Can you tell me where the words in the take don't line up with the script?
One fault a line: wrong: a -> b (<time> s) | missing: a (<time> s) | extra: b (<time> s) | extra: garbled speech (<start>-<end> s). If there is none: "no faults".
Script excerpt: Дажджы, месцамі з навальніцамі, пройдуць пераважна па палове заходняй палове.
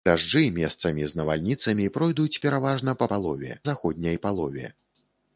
no faults